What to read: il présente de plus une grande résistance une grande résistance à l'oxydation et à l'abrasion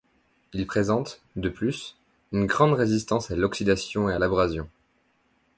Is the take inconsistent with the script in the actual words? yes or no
yes